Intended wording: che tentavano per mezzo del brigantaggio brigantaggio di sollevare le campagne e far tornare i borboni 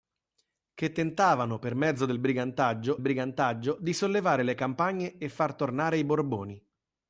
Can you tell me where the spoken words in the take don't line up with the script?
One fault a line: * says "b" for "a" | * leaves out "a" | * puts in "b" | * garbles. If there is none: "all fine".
all fine